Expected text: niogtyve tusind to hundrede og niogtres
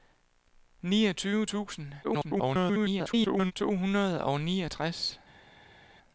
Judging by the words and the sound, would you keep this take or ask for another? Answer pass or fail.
fail